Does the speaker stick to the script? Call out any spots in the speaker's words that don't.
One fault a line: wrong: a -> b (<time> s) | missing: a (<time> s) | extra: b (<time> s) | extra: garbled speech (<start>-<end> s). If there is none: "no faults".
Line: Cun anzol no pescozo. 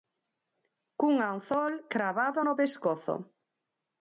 extra: cravado (1.9 s)